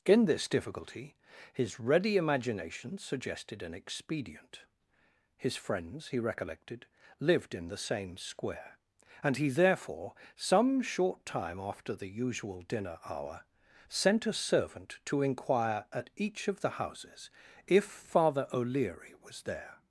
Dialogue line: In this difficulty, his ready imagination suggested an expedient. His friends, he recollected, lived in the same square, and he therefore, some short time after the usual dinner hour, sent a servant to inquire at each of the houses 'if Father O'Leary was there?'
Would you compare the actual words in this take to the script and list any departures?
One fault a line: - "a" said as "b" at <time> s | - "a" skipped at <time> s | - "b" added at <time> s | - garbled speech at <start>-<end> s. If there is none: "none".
none